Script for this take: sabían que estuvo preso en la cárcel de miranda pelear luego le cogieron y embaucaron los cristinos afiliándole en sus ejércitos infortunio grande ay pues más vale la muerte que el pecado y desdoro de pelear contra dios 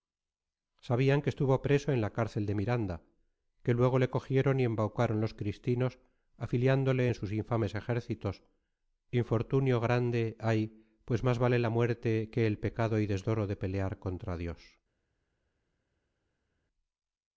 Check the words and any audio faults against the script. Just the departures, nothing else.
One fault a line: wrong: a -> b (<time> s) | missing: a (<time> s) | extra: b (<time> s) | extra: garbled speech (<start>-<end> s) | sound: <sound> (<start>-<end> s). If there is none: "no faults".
wrong: pelear -> que (3.6 s)
extra: infames (7.3 s)